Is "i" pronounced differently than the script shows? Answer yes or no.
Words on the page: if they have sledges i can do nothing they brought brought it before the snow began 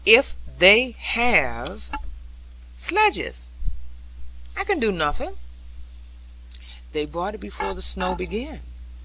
no